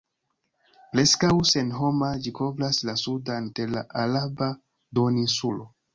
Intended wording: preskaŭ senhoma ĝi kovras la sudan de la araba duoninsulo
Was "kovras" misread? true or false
false